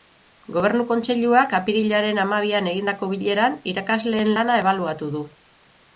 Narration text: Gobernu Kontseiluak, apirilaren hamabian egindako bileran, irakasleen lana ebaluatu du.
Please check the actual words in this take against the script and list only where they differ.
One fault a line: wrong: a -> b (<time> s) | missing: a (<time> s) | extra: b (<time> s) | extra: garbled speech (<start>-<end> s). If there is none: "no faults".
no faults